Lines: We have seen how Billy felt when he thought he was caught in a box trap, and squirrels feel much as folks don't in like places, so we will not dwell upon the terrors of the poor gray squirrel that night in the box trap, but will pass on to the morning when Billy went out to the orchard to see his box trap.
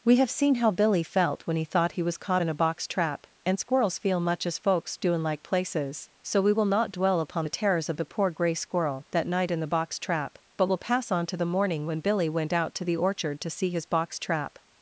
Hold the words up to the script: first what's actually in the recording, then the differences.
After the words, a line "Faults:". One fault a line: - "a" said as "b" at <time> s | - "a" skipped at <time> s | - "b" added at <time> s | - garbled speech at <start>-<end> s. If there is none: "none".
We have seen how Billy felt when he thought he was caught in a box trap, and squirrels feel much as folks do in like places, so we will not dwell upon the terrors of the poor gray squirrel that night in the box trap, but will pass on to the morning when Billy went out to the orchard to see his box trap.
Faults:
- "don't" said as "do" at 5.0 s